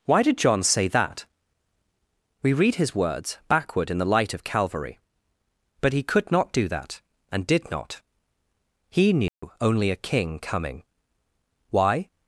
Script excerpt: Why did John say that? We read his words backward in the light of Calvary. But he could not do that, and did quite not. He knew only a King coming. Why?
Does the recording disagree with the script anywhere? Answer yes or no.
yes